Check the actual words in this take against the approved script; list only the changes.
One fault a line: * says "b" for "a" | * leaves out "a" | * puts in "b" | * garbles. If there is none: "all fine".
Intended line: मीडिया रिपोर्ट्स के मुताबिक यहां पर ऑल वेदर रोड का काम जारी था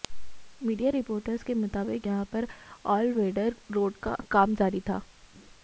all fine